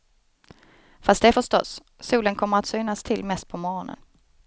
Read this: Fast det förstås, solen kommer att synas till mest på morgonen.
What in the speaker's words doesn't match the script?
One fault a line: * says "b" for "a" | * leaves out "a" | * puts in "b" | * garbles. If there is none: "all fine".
all fine